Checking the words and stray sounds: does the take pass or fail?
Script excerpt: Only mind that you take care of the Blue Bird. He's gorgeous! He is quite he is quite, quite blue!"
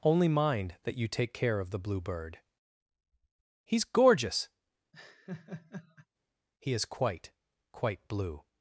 fail